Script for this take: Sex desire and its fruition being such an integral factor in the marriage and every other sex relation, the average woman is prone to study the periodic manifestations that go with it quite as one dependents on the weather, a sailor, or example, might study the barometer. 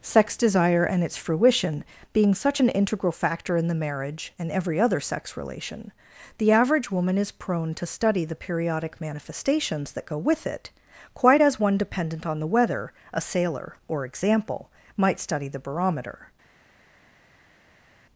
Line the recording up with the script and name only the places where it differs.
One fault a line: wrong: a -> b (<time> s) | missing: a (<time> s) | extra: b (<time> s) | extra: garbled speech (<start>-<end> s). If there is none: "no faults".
wrong: dependents -> dependent (11.8 s)